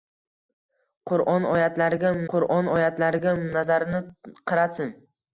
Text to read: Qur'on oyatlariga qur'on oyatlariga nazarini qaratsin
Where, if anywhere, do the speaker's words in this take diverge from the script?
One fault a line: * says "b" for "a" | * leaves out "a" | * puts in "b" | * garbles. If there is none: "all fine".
all fine